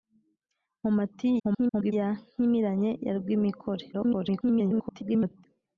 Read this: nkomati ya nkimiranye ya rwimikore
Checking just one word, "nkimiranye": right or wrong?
right